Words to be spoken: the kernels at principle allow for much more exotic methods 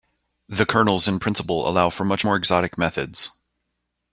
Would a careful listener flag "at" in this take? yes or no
yes